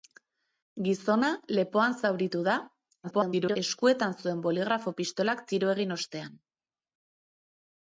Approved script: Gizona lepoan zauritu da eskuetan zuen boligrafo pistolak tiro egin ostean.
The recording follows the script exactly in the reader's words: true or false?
false